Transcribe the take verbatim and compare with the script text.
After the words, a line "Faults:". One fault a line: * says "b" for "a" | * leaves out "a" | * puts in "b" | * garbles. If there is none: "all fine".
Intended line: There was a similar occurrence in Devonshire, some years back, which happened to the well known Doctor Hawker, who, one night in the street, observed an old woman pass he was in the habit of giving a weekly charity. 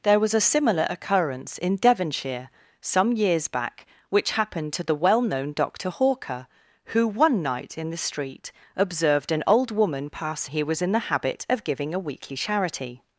There was a similar occurrence in Devonshire, some years back, which happened to the well known Doctor Hawker, who, one night in the street, observed an old woman pass he was in the habit of giving a weekly charity.
Faults:
all fine